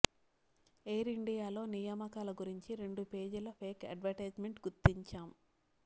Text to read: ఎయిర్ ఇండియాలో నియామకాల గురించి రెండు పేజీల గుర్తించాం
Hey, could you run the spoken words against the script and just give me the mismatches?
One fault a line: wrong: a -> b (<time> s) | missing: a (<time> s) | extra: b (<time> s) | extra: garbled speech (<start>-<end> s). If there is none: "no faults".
extra: ఫేక్ అడ్వర్టైజ్మెంట్ (3.6 s)